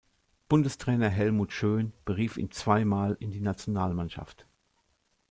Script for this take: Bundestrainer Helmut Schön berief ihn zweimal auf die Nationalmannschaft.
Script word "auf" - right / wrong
wrong